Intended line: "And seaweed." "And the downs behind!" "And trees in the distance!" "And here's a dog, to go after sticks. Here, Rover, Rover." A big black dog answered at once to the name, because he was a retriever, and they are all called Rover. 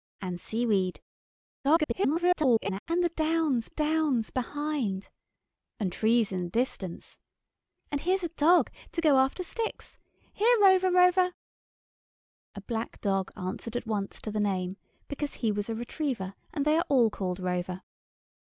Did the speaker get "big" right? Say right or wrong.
wrong